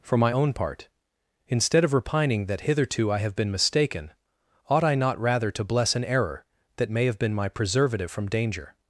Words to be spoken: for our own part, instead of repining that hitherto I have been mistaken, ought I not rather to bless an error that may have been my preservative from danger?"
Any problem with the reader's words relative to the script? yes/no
yes